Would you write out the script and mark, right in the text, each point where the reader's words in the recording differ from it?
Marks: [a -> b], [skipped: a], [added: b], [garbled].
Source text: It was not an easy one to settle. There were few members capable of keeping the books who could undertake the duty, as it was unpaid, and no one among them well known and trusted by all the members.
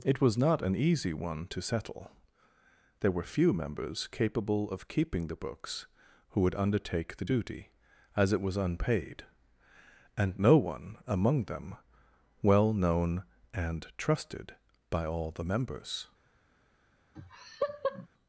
It was not an easy one to settle. There were few members capable of keeping the books who [could -> would] undertake the duty, as it was unpaid, and no one among them well known and trusted by all the members.